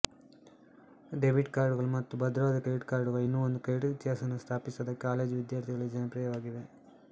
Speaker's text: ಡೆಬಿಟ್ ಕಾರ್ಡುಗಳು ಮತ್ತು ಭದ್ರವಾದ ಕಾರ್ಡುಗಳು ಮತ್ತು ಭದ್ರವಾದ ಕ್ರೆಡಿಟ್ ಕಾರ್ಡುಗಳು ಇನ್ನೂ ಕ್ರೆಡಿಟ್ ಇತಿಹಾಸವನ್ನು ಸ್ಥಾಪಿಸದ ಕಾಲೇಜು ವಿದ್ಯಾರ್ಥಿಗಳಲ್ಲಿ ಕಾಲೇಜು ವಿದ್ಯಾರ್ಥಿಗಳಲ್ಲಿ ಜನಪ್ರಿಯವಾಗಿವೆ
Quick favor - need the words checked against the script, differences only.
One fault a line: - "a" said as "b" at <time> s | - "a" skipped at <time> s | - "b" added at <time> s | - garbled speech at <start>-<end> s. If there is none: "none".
- "ಕಾರ್ಡುಗಳು ಮತ್ತು ಭದ್ರವಾದ" skipped at 2.6 s
- "ಒಂದು" added at 3.5 s
- "ಕಾಲೇಜು ವಿದ್ಯಾರ್ಥಿಗಳಲ್ಲಿ" skipped at 5.9 s